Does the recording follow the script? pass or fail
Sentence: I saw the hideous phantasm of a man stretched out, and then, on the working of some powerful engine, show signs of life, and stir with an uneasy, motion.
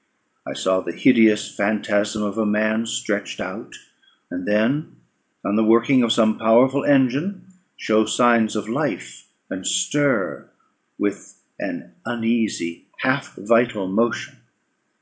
fail